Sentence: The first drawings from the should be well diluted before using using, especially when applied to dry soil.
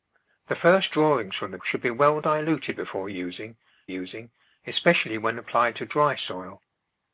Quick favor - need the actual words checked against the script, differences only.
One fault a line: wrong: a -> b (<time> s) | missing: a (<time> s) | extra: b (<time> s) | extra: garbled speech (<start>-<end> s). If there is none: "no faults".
no faults